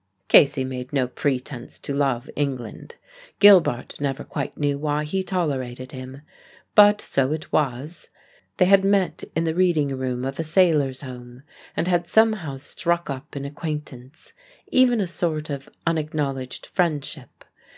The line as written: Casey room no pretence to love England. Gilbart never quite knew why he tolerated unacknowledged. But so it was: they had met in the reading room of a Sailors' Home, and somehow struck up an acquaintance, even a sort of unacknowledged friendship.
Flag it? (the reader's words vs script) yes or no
yes